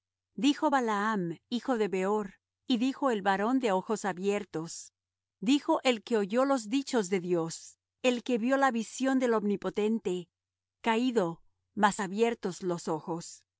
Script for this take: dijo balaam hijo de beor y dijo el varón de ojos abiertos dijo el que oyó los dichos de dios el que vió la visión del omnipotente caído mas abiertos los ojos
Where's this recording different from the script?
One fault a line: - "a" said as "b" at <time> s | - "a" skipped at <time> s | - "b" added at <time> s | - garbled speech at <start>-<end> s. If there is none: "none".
none